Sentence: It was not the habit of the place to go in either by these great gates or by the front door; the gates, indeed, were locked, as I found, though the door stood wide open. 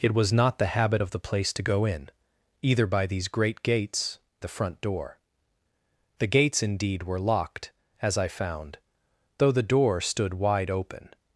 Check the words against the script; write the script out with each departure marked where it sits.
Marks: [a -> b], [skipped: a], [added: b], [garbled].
It was not the habit of the place to go in either by these great gates [skipped: or by] the front door; the gates, indeed, were locked, as I found, though the door stood wide open.